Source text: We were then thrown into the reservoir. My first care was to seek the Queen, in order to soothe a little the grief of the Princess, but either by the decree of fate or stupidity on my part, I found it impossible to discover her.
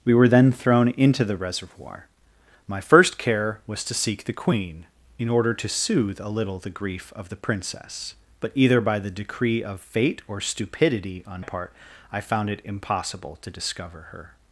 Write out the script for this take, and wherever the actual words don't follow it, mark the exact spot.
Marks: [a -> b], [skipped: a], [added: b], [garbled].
We were then thrown into the reservoir. My first care was to seek the Queen, in order to soothe a little the grief of the Princess, but either by the decree of fate or stupidity on [skipped: my] part, I found it impossible to discover her.